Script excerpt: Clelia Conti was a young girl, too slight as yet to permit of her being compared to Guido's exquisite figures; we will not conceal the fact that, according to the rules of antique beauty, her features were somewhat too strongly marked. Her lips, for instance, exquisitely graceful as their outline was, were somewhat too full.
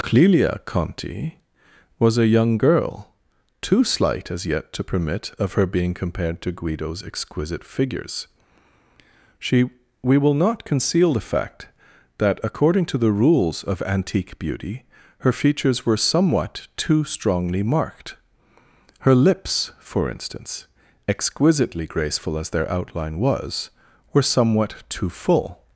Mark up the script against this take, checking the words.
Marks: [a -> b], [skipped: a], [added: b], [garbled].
Clelia Conti was a young girl, too slight as yet to permit of her being compared to Guido's exquisite figures; [added: she] we will not conceal the fact that, according to the rules of antique beauty, her features were somewhat too strongly marked. Her lips, for instance, exquisitely graceful as their outline was, were somewhat too full.